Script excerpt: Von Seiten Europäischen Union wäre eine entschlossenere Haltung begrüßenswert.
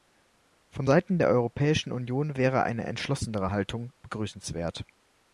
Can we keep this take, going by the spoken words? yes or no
no